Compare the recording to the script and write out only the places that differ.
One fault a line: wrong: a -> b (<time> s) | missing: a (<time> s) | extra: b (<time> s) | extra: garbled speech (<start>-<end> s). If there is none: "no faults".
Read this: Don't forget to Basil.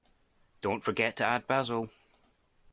extra: add (1.2 s)